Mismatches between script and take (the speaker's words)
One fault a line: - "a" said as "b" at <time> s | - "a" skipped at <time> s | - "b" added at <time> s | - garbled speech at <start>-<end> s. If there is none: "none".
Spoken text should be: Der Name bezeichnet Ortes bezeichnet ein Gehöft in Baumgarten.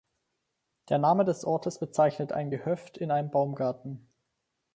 - "bezeichnet" said as "des" at 1.2 s
- "einem" added at 3.1 s